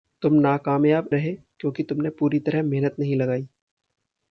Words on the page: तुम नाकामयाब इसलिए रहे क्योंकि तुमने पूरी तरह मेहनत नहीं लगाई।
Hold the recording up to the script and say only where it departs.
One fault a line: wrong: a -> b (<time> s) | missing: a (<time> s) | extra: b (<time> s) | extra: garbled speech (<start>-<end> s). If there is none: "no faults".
missing: इसलिए (1.1 s)